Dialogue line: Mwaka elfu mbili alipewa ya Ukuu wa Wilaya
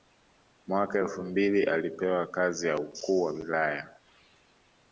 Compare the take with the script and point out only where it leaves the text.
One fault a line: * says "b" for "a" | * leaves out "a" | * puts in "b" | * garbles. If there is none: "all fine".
* puts in "kazi"